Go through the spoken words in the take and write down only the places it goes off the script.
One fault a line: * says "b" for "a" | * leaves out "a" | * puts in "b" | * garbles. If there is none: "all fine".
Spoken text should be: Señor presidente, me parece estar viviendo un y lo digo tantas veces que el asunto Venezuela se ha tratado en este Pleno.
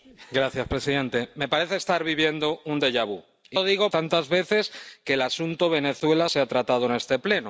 all fine